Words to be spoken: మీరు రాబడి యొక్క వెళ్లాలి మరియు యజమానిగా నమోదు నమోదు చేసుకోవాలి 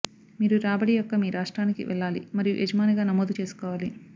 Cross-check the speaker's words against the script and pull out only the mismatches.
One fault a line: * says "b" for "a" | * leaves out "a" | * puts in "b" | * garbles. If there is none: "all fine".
* puts in "మీ రాష్ట్రానికి"
* leaves out "నమోదు"